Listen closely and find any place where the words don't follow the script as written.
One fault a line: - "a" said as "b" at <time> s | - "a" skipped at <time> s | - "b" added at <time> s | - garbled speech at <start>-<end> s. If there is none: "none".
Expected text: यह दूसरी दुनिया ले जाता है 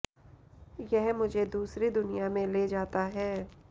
- "मुझे" added at 1.1 s
- "में" added at 2.3 s